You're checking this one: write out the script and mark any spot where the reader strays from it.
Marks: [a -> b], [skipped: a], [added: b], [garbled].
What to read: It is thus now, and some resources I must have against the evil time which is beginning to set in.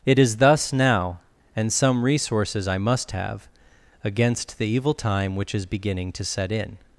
It is thus now, and some resources I must have against the evil time which is beginning to set in.